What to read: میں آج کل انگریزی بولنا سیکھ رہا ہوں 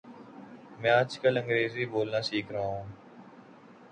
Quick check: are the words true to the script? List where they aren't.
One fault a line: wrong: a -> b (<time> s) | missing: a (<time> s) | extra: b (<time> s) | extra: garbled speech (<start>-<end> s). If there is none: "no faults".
no faults